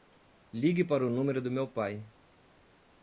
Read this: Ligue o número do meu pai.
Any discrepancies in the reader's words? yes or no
yes